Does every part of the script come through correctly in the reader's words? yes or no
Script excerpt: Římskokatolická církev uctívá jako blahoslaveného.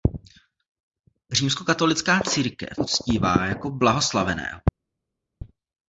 yes